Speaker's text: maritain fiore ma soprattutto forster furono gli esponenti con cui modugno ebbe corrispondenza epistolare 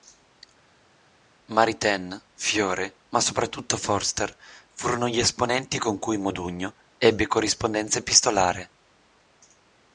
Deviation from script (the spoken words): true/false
false